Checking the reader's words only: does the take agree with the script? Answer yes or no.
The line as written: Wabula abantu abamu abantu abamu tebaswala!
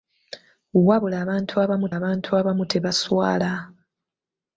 yes